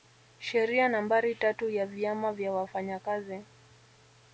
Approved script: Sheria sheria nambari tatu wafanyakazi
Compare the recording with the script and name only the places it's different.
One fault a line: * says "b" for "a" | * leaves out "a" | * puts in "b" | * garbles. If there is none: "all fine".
* leaves out "sheria"
* puts in "ya vyama vya"